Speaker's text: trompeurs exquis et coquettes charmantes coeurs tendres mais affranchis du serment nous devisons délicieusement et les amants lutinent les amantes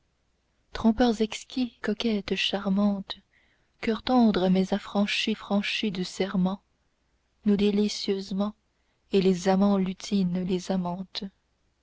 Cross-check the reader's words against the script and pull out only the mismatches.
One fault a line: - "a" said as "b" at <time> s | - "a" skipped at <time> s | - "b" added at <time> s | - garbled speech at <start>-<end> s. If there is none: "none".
- "et" skipped at 1.8 s
- "affranchis" added at 5.3 s
- "devisons" skipped at 7.6 s